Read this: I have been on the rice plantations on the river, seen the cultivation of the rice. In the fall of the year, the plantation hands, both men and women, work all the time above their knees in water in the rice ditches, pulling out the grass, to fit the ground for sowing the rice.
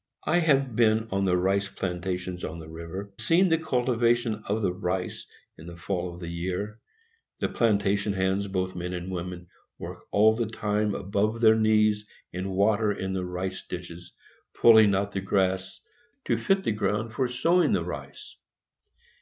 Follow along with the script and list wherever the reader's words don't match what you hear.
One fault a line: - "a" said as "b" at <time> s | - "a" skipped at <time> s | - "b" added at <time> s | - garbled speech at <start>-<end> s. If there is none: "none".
none